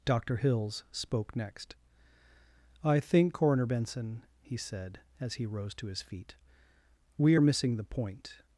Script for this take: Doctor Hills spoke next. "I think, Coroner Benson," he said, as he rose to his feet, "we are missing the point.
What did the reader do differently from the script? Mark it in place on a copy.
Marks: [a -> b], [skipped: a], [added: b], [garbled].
Doctor Hills spoke next. "I think, Coroner Benson," he said, as he rose to his feet, "we are missing the point.